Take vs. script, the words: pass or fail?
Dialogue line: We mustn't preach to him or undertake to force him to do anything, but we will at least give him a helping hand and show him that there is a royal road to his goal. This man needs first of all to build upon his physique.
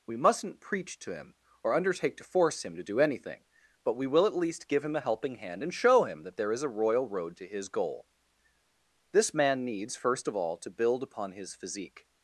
pass